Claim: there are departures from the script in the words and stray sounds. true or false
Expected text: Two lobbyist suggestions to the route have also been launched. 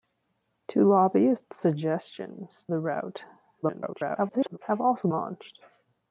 true